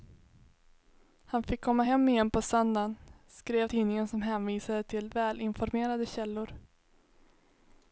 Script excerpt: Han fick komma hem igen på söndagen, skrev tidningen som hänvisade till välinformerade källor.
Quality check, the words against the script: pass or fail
pass